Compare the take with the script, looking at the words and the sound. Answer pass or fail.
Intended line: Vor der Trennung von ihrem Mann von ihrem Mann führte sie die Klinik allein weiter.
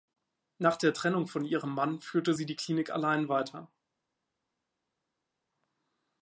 fail